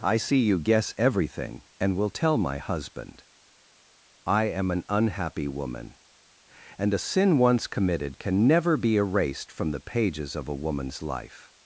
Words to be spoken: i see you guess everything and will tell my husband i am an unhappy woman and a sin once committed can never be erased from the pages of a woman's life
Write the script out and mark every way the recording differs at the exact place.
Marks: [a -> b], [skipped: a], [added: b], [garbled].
i see you guess everything and will tell my husband i am an unhappy woman and a sin once committed can never be erased from the pages of a woman's life